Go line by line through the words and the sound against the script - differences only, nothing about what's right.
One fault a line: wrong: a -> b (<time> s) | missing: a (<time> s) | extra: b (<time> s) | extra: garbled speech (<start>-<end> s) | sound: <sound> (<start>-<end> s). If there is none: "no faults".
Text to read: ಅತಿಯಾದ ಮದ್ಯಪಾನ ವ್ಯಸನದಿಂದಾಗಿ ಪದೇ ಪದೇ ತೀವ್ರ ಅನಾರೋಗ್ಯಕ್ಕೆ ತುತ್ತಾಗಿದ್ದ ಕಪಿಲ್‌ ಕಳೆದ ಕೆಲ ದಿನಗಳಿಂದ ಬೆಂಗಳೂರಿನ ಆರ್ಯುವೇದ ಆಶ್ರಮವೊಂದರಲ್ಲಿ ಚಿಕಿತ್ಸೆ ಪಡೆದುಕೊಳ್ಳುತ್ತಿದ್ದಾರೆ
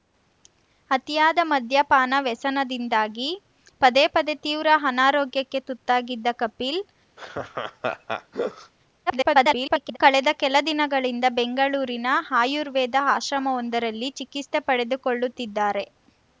sound: laugh (7.2-8.7 s)
extra: garbled speech (9.1-10.0 s)